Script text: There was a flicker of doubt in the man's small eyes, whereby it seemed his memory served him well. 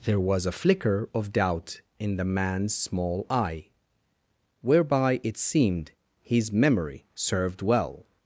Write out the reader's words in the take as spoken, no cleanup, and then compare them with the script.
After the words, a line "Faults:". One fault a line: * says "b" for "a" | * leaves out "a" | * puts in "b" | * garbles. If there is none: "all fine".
There was a flicker of doubt in the man's small eye, whereby it seemed his memory served well.
Faults:
* says "eye" for "eyes"
* leaves out "him"